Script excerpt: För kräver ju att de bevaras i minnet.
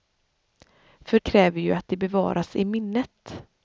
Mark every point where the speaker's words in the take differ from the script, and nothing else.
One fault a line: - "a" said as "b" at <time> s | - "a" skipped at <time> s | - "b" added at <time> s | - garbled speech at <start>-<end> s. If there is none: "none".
none